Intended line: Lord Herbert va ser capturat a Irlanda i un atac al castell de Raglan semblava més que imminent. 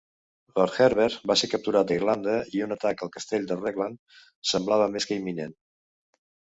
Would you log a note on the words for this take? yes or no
no